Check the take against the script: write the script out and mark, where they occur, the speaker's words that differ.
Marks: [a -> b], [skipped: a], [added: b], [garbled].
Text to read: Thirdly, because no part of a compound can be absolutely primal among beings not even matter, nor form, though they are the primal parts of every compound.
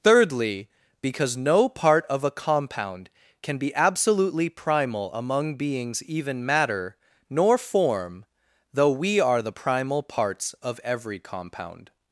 Thirdly, because no part of a compound can be absolutely primal among beings [skipped: not] even matter, nor form, though [they -> we] are the primal parts of every compound.